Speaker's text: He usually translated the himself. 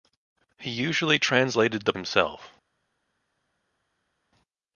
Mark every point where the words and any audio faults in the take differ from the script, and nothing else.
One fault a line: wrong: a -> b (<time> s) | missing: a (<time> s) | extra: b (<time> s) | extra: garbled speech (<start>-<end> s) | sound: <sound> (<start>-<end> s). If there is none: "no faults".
no faults